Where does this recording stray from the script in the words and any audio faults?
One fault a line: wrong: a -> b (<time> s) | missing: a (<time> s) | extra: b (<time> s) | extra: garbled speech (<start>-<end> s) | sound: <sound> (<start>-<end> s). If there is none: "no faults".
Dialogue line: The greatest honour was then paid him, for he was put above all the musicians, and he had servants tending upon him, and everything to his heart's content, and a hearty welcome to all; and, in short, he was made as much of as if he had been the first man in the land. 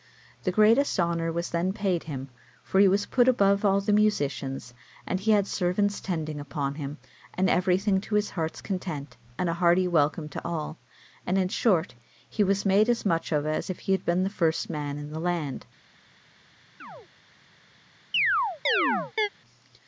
sound: chirp (16.8-17.1 s)
sound: chirp (18.1-19.3 s)